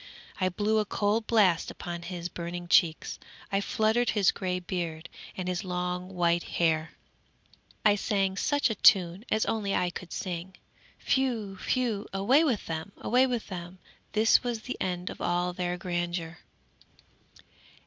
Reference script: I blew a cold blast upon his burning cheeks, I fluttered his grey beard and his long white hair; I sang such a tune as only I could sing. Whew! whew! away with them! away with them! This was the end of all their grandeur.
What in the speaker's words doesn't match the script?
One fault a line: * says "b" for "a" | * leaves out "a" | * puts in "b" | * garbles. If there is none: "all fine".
all fine